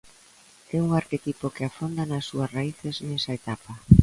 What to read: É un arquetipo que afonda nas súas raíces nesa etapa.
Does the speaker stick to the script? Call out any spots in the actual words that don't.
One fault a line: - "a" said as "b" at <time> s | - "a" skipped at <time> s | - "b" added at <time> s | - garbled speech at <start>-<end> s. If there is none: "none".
none